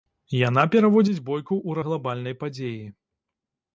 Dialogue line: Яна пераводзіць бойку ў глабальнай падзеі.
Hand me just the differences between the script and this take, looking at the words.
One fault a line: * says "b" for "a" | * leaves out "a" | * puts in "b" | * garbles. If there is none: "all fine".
all fine